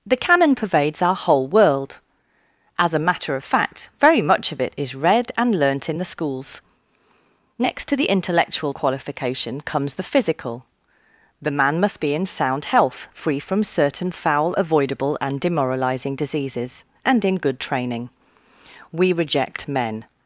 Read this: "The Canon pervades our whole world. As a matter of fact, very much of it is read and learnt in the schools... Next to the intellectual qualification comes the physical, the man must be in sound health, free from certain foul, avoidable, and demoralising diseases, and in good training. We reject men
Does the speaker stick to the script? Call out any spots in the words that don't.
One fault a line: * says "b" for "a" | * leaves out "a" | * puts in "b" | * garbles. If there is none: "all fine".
all fine